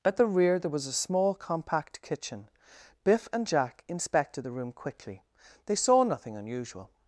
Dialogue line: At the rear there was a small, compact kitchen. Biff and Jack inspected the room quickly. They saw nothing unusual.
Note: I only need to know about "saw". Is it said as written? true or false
true